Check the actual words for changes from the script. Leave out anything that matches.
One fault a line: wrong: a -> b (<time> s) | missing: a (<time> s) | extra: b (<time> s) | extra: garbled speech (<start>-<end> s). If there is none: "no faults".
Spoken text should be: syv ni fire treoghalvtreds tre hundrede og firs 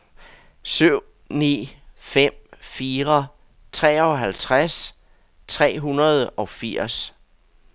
extra: fem (2.0 s)